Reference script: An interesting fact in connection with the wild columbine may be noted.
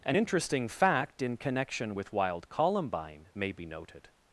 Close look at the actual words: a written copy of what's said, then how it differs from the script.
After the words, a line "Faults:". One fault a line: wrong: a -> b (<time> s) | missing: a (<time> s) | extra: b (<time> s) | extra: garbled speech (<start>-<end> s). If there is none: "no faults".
An interesting fact in connection with wild columbine may be noted.
Faults:
missing: the (2.1 s)